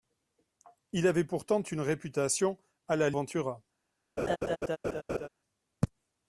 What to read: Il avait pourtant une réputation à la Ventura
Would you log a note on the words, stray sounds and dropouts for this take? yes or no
yes